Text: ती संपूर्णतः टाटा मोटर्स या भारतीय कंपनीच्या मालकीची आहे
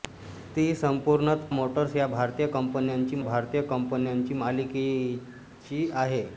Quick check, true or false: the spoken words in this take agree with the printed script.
false